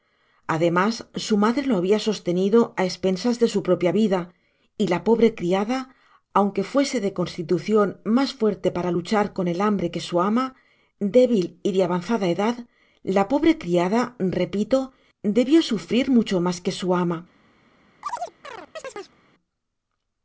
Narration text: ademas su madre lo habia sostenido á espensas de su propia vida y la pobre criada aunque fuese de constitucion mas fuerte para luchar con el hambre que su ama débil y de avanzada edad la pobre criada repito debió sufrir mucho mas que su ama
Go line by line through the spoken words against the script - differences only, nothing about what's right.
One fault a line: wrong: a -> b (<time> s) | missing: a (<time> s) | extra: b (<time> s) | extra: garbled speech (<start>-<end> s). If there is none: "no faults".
no faults